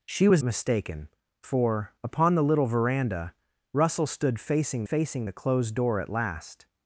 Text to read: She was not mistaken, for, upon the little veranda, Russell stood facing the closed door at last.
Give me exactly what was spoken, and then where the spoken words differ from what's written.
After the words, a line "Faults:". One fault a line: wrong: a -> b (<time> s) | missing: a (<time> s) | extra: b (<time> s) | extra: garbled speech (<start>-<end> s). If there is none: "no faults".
She was mistaken, for, upon the little veranda, Russell stood facing facing the closed door at last.
Faults:
missing: not (0.4 s)
extra: facing (4.8 s)